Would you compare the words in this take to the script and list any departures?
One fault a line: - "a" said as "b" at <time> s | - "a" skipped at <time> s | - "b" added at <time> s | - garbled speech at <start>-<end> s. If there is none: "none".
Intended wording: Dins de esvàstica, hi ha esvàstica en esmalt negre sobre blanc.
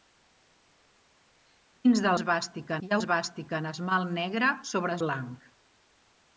none